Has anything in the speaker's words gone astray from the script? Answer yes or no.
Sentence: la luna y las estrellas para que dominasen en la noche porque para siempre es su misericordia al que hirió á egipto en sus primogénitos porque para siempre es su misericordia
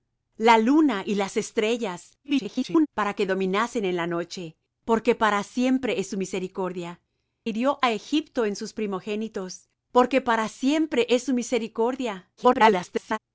yes